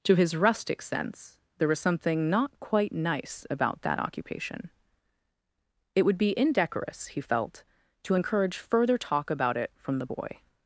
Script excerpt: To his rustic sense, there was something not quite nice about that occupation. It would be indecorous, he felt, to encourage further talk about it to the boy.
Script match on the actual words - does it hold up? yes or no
no